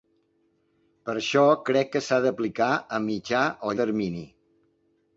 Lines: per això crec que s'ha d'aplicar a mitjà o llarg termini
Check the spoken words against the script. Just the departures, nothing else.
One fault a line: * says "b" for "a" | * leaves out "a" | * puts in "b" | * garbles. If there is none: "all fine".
* leaves out "llarg"